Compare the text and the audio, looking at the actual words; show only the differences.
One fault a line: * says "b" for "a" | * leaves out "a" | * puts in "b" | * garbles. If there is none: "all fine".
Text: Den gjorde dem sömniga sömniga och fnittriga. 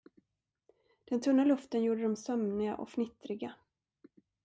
* puts in "tunna luften"
* leaves out "sömniga"